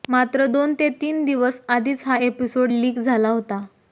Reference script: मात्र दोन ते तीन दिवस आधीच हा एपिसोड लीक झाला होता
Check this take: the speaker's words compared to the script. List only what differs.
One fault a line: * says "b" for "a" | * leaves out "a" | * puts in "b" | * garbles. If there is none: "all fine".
all fine